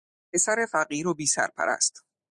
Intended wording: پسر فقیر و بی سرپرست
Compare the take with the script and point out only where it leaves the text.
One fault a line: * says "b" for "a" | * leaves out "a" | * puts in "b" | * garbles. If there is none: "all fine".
all fine